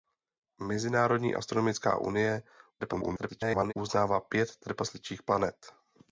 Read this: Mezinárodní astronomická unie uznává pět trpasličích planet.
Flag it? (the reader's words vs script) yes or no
yes